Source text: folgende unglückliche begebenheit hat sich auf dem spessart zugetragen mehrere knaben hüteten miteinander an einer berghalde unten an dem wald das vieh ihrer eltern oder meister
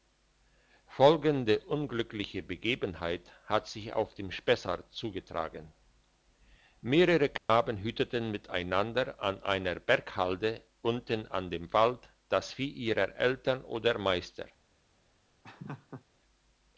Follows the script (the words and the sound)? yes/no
no